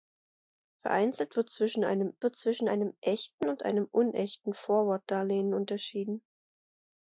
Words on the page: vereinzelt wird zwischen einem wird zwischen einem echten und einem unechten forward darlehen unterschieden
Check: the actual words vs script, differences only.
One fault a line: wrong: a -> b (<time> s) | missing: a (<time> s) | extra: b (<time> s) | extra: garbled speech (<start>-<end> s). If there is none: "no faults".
no faults